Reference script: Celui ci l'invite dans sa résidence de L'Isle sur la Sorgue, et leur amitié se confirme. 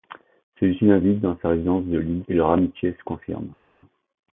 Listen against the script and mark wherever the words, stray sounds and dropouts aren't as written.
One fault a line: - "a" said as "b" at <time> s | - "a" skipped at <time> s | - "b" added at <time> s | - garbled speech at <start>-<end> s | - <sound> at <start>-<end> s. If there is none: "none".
- "sur la Sorgue" skipped at 2.2 s